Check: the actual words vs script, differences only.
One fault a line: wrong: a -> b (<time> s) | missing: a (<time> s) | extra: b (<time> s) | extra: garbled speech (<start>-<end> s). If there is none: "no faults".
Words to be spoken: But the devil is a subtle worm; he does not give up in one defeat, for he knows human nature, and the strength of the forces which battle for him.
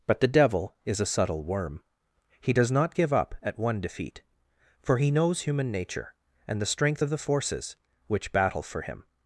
wrong: in -> at (3.4 s)